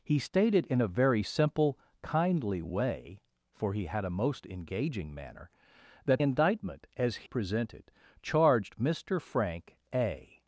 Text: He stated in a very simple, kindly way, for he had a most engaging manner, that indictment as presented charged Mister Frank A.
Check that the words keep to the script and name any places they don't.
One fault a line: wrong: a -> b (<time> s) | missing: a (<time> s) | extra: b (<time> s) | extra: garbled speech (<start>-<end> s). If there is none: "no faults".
no faults